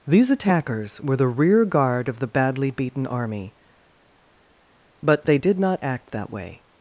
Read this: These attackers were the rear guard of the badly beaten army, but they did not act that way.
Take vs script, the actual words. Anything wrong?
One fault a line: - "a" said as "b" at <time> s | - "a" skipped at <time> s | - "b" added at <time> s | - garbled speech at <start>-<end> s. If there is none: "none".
none